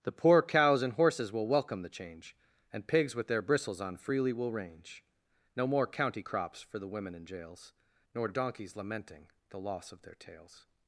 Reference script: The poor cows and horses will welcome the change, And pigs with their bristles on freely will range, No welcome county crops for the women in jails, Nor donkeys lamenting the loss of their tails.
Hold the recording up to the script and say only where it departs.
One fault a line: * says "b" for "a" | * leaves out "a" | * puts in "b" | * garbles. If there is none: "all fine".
* says "more" for "welcome"